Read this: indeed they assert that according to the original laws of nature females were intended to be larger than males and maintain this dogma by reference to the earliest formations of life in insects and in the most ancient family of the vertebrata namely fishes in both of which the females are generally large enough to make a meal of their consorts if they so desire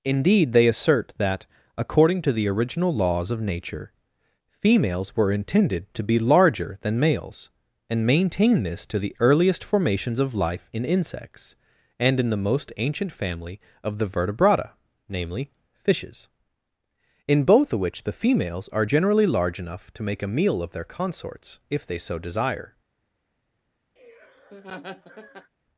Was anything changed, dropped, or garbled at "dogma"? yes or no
yes